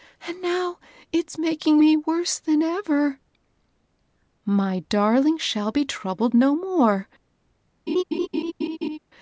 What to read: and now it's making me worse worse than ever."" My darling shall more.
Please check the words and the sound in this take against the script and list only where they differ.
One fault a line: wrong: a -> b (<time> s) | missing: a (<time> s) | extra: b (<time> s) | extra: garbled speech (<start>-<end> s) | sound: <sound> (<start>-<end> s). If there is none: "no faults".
missing: worse (2.4 s)
extra: be troubled no (5.7 s)
sound: laugh (7.9-9.0 s)